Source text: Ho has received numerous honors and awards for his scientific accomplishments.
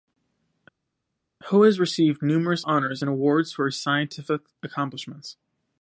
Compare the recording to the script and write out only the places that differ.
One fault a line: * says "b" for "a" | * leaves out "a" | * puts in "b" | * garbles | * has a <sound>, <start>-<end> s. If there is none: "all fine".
all fine